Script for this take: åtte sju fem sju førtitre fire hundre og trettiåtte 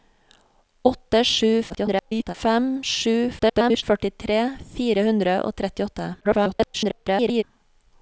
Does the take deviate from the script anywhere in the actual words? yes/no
yes